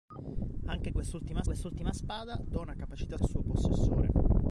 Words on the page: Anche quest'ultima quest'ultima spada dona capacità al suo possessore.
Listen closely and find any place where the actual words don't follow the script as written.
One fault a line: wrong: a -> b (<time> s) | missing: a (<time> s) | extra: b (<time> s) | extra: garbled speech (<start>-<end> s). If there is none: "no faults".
no faults